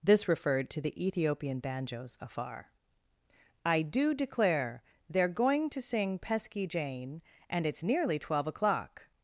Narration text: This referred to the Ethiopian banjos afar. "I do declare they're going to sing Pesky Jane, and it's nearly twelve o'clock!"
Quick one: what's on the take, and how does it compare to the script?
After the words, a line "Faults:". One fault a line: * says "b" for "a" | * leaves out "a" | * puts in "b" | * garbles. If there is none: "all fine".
This referred to the Ethiopian banjos afar. "I do declare they're going to sing Pesky Jane, and it's nearly twelve o'clock!"
Faults:
all fine